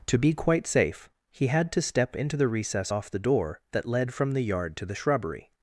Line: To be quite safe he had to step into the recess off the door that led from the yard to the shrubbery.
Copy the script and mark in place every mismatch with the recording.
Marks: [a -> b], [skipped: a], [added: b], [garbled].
To be quite safe he had to step into the recess off the door that led from the yard to the shrubbery.